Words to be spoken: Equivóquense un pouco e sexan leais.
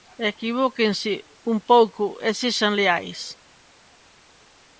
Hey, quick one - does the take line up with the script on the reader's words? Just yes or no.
yes